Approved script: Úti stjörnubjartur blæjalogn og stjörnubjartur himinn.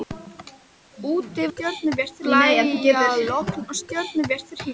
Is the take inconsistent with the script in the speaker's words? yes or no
no